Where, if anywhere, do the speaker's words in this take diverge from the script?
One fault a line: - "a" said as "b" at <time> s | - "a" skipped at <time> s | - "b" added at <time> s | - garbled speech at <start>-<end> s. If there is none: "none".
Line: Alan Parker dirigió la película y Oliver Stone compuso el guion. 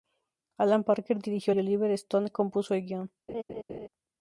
- "la película" skipped at 1.5 s